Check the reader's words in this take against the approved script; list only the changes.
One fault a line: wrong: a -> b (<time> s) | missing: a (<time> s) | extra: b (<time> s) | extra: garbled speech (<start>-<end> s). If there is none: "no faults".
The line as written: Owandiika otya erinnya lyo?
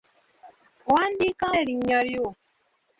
missing: otya (1.4 s)